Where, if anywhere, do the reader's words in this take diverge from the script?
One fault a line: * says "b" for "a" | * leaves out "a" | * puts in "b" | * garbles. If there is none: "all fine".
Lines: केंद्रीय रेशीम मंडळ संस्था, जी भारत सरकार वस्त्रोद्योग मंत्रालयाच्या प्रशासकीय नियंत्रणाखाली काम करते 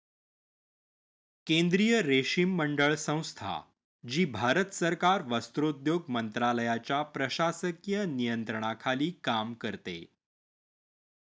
all fine